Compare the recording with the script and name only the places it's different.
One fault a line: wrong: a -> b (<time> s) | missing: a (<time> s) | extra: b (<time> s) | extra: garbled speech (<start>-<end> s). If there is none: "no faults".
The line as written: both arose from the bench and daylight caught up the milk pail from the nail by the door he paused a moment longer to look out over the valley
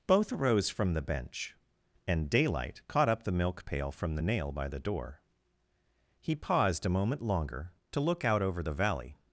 no faults